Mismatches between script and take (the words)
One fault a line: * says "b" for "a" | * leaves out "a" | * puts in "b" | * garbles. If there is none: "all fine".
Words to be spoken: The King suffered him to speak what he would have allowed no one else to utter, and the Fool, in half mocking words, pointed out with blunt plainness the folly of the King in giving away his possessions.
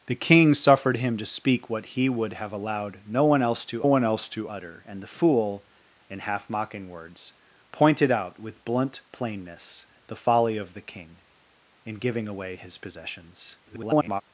* puts in "one else to"
* garbles